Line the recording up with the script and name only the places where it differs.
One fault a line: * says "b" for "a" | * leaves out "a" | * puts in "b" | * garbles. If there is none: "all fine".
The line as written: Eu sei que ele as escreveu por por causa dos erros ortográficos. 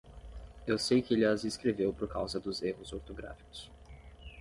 * leaves out "por"